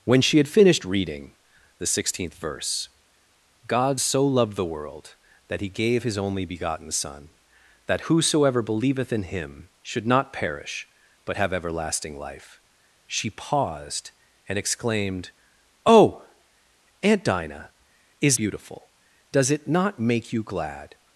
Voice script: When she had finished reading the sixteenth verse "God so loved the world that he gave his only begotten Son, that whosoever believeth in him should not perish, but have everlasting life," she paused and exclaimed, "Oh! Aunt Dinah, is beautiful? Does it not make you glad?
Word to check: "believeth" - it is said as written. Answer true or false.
true